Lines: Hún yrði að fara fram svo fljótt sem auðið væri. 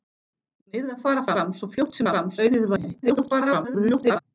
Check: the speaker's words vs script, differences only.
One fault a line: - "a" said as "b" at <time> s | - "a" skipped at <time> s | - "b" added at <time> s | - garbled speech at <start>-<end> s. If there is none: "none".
- "sem" said as "fram" at 2.1 s
- garbled speech at 3.0-4.2 s